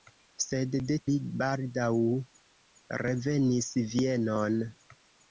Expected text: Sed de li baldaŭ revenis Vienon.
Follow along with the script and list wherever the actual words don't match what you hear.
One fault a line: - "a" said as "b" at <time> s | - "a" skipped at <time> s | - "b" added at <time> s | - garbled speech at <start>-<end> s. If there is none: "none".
none